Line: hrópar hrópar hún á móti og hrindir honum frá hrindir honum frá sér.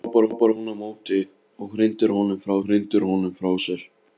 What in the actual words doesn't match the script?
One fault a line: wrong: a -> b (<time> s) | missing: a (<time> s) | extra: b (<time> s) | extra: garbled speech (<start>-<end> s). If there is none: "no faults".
no faults